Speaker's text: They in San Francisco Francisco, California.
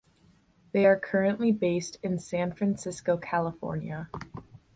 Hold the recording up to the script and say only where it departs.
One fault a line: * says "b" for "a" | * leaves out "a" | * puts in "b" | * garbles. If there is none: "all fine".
* puts in "are currently based"
* leaves out "Francisco"